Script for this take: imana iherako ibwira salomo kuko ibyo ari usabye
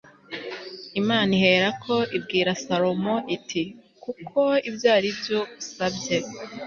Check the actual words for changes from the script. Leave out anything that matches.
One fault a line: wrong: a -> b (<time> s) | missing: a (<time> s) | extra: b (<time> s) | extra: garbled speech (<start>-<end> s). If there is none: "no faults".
extra: iti (3.4 s)
extra: byo (5.2 s)